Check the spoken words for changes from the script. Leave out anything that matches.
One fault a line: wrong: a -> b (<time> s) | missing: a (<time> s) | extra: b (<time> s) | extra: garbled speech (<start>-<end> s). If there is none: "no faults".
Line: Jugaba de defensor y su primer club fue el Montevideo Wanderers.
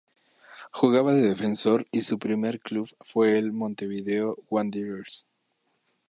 no faults